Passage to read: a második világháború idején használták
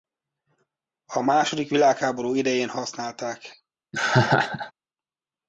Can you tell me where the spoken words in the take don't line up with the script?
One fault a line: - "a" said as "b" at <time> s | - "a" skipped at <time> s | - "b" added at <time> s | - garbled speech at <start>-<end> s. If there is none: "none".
none